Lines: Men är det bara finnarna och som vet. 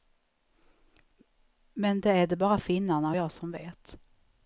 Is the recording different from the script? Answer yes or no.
yes